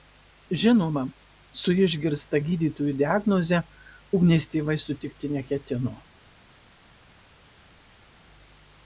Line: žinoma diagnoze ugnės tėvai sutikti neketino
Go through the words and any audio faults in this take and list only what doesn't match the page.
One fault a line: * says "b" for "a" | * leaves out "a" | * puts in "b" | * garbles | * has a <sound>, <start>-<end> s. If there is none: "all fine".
* puts in "su išgirsta gydytojų"